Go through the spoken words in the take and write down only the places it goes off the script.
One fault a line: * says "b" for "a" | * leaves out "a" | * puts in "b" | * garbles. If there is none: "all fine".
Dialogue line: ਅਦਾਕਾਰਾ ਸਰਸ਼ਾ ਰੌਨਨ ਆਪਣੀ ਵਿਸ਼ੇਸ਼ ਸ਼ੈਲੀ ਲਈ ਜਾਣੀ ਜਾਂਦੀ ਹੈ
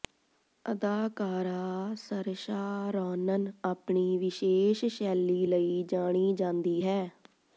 all fine